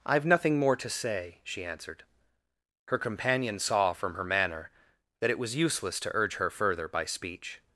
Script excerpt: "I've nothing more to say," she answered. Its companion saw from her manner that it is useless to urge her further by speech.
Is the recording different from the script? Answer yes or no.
yes